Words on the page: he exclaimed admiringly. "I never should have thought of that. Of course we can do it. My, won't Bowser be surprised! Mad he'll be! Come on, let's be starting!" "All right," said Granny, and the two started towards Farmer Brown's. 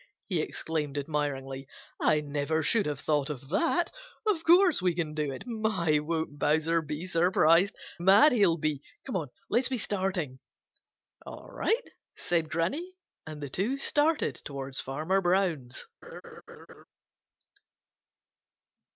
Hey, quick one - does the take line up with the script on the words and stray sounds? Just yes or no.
no